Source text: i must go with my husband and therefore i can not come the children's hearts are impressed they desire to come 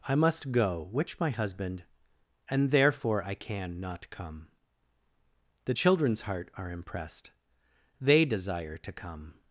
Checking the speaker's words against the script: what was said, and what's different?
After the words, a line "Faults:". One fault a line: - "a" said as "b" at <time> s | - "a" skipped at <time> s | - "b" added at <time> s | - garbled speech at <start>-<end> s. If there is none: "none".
i must go which my husband and therefore i can not come the children's heart are impressed they desire to come
Faults:
- "with" said as "which" at 0.9 s
- "hearts" said as "heart" at 6.2 s